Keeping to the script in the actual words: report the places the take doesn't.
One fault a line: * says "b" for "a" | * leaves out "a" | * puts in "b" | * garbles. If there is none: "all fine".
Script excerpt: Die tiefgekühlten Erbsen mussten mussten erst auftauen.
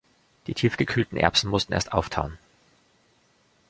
* leaves out "mussten"